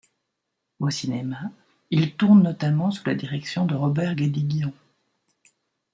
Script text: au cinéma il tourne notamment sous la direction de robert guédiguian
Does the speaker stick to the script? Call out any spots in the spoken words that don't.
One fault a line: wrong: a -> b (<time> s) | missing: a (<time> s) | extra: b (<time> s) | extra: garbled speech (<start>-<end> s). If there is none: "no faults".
no faults